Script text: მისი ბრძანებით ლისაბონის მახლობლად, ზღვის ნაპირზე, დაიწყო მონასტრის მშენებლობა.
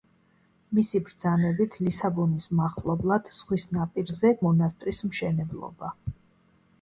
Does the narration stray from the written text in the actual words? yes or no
yes